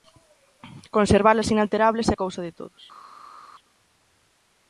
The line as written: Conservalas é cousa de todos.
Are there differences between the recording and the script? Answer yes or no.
yes